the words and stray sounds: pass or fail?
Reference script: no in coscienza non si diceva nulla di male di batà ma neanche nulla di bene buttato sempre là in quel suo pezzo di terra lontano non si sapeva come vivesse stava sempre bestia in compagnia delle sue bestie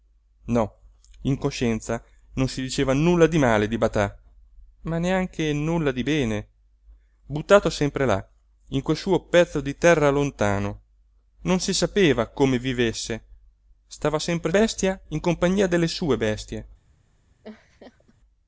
fail